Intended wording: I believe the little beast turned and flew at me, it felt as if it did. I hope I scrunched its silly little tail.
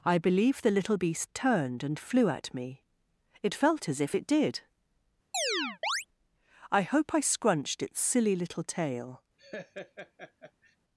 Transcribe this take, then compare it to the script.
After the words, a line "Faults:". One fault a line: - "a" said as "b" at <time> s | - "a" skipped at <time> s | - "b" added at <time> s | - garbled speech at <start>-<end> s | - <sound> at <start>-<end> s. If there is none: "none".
I believe the little beast turned and flew at me, it felt as if it did. I hope I scrunched its silly little tail.
Faults:
- chirp at 5.3-6.1 s
- laugh at 9.4-10.8 s